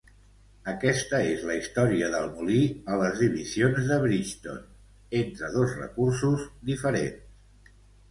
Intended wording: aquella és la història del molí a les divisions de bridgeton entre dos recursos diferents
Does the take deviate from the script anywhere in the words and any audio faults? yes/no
yes